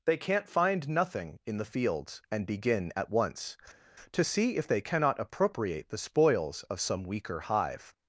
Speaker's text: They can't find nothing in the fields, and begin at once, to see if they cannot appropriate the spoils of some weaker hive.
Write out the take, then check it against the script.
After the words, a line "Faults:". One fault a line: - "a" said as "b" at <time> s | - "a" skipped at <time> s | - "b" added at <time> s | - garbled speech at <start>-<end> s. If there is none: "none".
They can't find nothing in the fields, and begin at once, to see if they cannot appropriate the spoils of some weaker hive.
Faults:
none